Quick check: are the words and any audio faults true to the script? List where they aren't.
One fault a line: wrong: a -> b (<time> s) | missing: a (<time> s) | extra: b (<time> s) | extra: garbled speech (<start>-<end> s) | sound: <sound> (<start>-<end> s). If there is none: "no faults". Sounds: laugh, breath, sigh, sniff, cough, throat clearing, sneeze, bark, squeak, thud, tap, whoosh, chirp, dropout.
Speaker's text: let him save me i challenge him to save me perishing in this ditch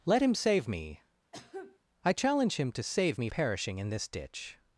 sound: cough (1.3-1.8 s)